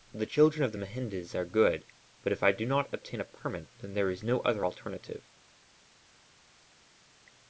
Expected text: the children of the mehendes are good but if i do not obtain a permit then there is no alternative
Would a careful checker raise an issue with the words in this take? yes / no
yes